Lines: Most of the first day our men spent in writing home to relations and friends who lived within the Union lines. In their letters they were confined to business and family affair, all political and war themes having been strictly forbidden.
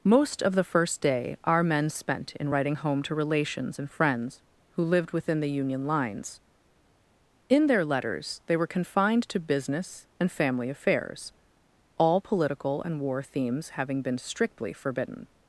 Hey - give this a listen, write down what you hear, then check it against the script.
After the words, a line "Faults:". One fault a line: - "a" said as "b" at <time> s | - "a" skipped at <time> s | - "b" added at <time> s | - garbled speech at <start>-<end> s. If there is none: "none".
Most of the first day our men spent in writing home to relations and friends who lived within the Union lines. In their letters they were confined to business and family affairs, all political and war themes having been strictly forbidden.
Faults:
- "affair" said as "affairs" at 10.7 s